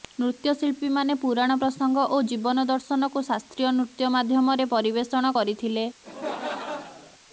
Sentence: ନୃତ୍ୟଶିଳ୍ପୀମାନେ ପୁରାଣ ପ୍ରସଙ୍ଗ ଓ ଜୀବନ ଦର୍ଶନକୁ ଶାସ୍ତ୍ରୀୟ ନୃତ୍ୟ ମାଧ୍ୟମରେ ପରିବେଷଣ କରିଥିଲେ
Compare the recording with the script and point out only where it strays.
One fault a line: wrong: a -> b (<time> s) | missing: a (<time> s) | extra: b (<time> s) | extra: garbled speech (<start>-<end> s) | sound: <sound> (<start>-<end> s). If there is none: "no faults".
sound: laugh (6.0-7.2 s)